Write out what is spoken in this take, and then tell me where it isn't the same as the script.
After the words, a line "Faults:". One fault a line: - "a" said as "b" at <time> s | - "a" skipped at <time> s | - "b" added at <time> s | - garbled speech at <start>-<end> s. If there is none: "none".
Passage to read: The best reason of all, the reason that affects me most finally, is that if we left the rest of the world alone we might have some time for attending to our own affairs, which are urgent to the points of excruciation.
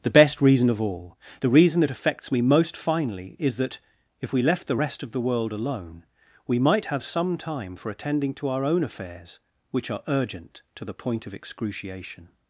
The best reason of all, the reason that affects me most finally, is that if we left the rest of the world alone we might have some time for attending to our own affairs, which are urgent to the point of excruciation.
Faults:
- "points" said as "point" at 10.9 s